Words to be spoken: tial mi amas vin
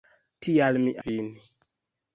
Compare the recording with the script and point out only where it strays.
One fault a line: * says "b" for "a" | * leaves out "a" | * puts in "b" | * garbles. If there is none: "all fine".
* leaves out "amas"